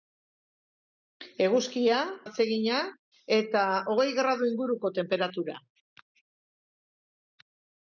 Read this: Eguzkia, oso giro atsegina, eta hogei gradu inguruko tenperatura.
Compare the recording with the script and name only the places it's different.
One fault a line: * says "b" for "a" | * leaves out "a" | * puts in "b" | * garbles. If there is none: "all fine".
* leaves out "oso giro"